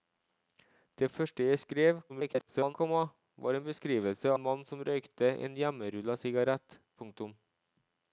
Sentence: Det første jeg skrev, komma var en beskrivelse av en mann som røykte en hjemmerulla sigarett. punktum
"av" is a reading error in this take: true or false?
true